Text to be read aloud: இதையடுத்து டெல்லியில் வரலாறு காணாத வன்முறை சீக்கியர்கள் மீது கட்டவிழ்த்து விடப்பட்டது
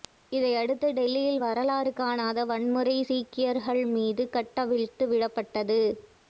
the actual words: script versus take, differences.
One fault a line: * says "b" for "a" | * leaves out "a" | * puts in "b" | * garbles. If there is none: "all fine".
all fine